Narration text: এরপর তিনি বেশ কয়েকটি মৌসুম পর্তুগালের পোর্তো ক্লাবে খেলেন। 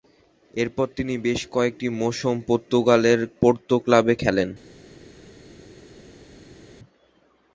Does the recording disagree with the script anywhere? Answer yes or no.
no